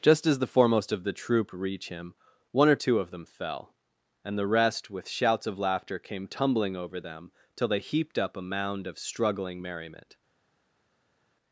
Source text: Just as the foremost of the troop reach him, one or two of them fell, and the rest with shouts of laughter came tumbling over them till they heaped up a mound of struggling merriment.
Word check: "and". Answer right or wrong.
right